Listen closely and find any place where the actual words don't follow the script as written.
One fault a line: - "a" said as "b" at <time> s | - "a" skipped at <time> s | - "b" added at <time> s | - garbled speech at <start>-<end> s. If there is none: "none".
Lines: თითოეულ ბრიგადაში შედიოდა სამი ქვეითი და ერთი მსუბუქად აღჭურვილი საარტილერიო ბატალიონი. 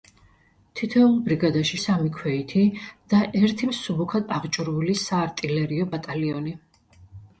- "შედიოდა" skipped at 1.8 s